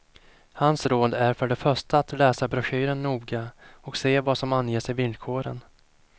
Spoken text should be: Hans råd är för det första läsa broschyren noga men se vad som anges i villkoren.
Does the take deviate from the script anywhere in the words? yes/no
yes